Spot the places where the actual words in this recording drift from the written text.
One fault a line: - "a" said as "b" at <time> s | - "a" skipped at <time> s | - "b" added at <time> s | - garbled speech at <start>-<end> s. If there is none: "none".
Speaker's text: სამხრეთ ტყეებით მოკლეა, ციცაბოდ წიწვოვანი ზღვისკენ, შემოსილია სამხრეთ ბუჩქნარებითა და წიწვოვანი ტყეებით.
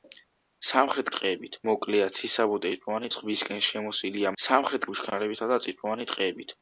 none